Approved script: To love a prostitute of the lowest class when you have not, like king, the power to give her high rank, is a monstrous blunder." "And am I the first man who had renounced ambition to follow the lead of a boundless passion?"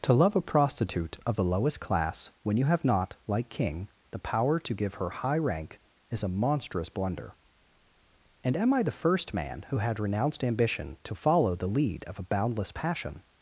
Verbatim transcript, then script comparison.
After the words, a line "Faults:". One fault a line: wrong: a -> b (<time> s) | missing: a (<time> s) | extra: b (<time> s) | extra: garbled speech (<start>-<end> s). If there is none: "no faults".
To love a prostitute of the lowest class when you have not, like king, the power to give her high rank, is a monstrous blunder." "And am I the first man who had renounced ambition to follow the lead of a boundless passion?"
Faults:
no faults